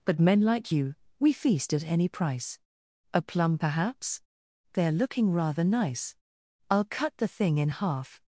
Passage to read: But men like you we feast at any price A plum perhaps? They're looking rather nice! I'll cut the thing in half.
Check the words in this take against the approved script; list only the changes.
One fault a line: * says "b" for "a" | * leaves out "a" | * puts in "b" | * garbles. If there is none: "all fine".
all fine